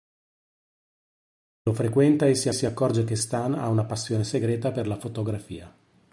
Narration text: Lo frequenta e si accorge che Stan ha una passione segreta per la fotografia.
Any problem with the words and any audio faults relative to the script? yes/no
yes